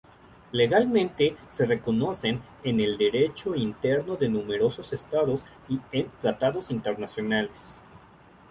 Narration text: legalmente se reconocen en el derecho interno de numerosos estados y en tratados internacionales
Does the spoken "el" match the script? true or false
true